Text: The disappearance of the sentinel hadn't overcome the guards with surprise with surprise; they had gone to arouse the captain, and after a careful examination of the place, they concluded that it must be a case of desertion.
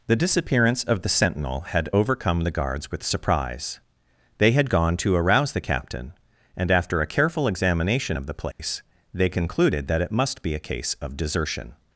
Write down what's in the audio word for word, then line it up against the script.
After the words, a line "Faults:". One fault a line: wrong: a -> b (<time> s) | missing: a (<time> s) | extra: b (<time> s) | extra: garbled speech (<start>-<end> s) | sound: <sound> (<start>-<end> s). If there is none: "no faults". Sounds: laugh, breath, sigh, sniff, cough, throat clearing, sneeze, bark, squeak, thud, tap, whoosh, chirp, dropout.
The disappearance of the sentinel had overcome the guards with surprise; they had gone to arouse the captain, and after a careful examination of the place, they concluded that it must be a case of desertion.
Faults:
wrong: hadn't -> had (1.7 s)
missing: with surprise (3.8 s)
sound: dropout (8.5-8.6 s)